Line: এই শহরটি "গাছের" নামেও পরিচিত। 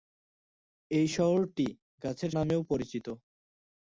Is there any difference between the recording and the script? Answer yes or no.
no